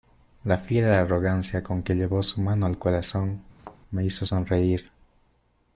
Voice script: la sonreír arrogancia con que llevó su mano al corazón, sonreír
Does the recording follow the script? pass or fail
fail